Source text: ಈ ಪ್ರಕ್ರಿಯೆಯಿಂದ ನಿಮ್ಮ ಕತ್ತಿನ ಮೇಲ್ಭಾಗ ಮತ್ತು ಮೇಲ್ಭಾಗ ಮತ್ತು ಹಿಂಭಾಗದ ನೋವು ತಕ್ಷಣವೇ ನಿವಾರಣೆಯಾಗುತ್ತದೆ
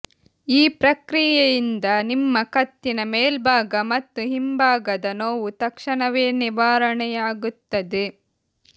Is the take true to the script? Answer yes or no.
no